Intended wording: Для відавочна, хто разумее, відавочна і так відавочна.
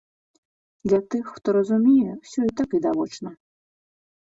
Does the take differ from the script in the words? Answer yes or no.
yes